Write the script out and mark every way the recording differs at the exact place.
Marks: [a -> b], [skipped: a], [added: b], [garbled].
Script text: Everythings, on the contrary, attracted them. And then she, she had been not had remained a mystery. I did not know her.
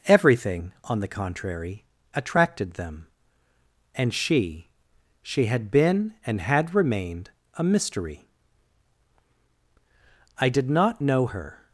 [Everythings, -> Everything] on the contrary, attracted them. And [skipped: then] she, she had been [not -> and] had remained a mystery. I did not know her.